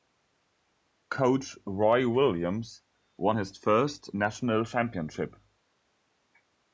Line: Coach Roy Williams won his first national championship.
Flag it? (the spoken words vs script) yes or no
no